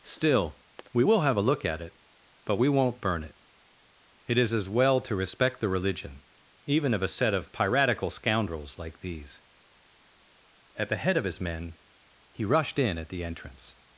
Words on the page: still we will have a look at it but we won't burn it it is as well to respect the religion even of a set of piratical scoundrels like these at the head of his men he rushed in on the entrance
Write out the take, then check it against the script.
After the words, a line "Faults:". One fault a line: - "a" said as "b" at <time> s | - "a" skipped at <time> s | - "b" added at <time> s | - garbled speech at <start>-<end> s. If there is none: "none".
still we will have a look at it but we won't burn it it is as well to respect the religion even of a set of piratical scoundrels like these at the head of his men he rushed in at the entrance
Faults:
- "on" said as "at" at 13.0 s